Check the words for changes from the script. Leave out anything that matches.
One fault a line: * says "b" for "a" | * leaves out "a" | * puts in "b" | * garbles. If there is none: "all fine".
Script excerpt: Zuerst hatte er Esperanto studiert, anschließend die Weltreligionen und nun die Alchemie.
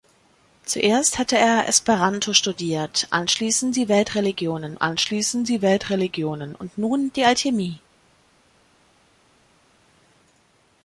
* puts in "anschließend die Weltreligionen"